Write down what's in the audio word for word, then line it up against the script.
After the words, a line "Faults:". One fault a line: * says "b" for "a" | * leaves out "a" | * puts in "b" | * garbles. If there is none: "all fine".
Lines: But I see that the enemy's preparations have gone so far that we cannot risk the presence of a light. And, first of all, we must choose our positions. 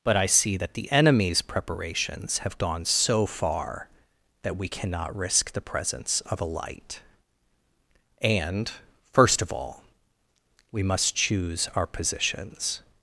But I see that the enemy's preparations have gone so far that we cannot risk the presence of a light. And, first of all, we must choose our positions.
Faults:
all fine